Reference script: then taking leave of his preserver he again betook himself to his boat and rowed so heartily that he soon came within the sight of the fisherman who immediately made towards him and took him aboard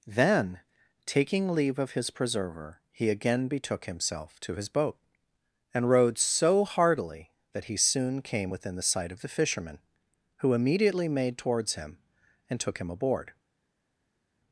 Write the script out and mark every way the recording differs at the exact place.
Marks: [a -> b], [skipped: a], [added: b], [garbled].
then taking leave of his preserver he again betook himself to his boat and rowed so heartily that he soon came within the sight of the fisherman who immediately made towards him and took him aboard